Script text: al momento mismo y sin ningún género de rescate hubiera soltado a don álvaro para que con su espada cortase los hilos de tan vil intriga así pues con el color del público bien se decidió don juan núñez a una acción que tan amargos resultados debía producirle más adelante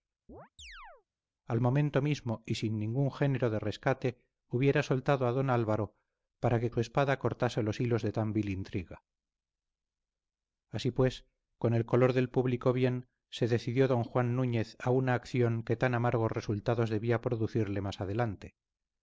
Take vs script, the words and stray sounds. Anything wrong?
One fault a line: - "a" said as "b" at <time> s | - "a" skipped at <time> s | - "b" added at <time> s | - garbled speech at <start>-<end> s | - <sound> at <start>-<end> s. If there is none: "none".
- chirp at 0.3-1.1 s
- "con" skipped at 6.7 s